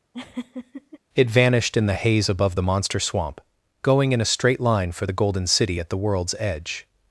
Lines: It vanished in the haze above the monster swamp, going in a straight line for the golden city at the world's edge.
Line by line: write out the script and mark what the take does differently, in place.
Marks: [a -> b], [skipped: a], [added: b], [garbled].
It vanished in the haze above the monster swamp, going in a straight line for the golden city at the world's edge.